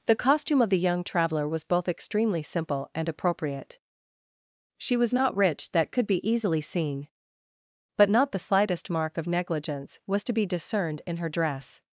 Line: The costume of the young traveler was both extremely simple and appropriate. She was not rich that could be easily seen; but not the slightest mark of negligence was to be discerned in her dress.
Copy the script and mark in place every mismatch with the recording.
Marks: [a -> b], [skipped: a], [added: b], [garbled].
The costume of the young traveler was both extremely simple and appropriate. She was not rich that could be easily seen; but not the slightest mark of negligence was to be discerned in her dress.